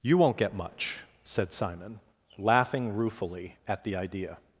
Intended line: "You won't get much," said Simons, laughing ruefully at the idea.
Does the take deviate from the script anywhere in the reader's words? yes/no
yes